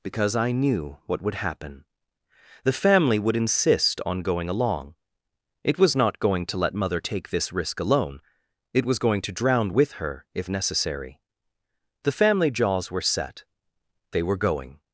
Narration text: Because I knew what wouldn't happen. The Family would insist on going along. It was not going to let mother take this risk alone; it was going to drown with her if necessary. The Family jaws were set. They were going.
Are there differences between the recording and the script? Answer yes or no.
yes